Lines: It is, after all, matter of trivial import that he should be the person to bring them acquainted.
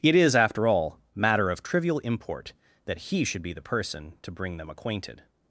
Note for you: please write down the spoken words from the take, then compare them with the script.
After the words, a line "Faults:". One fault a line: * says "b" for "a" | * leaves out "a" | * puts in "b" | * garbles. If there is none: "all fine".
It is, after all, matter of trivial import that he should be the person to bring them acquainted.
Faults:
all fine